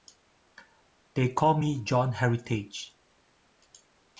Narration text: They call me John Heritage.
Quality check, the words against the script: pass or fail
pass